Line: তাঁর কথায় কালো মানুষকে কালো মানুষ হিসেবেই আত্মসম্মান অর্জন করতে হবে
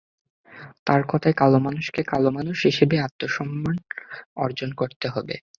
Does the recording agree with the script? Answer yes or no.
yes